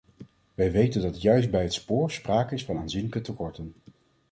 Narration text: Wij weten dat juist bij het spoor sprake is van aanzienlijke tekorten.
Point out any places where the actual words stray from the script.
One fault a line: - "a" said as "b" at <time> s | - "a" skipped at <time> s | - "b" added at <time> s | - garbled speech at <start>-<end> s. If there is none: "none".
none